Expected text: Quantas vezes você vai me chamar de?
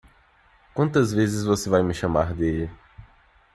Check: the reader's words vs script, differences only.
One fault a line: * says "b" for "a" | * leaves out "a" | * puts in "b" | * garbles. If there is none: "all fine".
all fine